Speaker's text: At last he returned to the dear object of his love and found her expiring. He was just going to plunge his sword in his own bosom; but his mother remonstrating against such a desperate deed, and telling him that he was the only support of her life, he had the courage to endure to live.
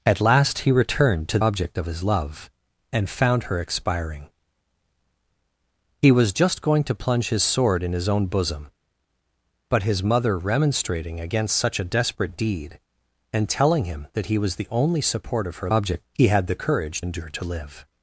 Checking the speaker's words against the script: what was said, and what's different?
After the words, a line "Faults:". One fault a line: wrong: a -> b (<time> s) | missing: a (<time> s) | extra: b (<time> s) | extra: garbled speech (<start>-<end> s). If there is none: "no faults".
At last he returned to object of his love and found her expiring. He was just going to plunge his sword in his own bosom; but his mother remonstrating against such a desperate deed, and telling him that he was the only support of her object, he had the courage endure to live.
Faults:
missing: the dear (1.4 s)
wrong: life -> object (15.7 s)
missing: to (17.0 s)